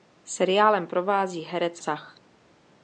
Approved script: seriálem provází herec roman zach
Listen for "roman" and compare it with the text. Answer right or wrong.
wrong